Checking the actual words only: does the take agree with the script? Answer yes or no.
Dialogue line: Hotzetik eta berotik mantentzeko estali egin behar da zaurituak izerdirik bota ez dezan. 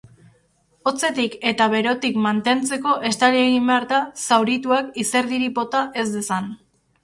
yes